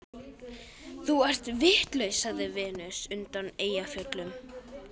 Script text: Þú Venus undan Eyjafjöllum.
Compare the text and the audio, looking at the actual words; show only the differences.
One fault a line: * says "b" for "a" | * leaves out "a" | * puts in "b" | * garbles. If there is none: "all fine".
* puts in "ert vitlaus sagði"